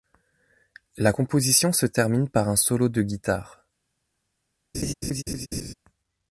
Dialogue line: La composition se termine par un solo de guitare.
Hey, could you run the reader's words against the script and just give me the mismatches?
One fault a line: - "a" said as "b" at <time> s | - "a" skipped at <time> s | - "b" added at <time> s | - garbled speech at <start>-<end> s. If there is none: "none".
none